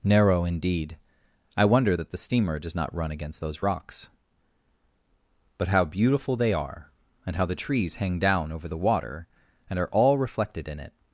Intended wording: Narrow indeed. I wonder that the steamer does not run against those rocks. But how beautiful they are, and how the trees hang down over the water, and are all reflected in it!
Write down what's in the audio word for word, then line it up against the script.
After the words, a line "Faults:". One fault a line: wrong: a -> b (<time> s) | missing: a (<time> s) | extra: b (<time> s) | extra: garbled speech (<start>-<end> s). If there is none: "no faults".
Narrow indeed. I wonder that the steamer does not run against those rocks. But how beautiful they are, and how the trees hang down over the water, and are all reflected in it!
Faults:
no faults